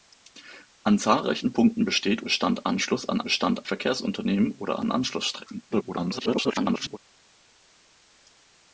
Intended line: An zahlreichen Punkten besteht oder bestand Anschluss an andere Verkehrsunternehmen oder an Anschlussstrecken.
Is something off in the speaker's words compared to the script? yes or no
yes